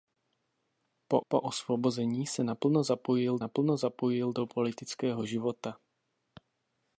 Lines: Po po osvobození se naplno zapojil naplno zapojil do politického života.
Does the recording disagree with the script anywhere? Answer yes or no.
no